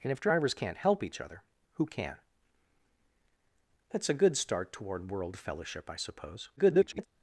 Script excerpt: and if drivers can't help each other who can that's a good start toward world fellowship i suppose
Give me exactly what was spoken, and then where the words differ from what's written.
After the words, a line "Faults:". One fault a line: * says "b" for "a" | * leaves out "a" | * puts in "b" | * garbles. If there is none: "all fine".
and if drivers can't help each other who can that's a good start toward world fellowship i suppose [garbled]
Faults:
* garbles